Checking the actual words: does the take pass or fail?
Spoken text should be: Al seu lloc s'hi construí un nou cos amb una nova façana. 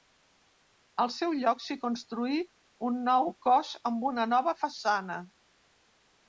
pass